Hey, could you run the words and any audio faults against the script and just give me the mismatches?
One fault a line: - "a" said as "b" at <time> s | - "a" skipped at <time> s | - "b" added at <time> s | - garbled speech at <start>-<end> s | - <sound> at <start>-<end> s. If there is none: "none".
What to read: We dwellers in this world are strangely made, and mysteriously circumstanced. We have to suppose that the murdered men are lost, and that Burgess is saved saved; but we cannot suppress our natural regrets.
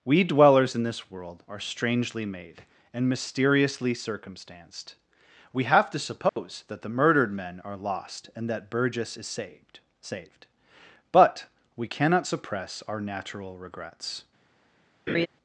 - dropout at 6.3-6.4 s
- laugh at 15.1-15.3 s